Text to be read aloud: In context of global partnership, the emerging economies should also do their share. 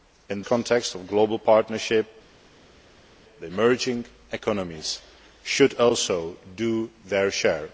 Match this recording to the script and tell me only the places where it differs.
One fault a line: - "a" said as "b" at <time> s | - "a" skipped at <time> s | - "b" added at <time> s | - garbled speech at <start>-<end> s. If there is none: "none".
none